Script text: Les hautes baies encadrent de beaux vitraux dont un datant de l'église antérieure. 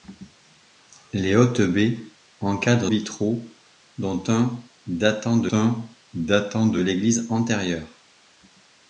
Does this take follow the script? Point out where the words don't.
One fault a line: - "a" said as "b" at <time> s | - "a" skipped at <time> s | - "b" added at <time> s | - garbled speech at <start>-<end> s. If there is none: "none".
- "de beaux vitraux dont" said as "vitraux dont un datant de" at 2.9 s